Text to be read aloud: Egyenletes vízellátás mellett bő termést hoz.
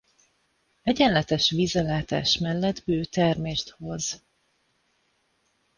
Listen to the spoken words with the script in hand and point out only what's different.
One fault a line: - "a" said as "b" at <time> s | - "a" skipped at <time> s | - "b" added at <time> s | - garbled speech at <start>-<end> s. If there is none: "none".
none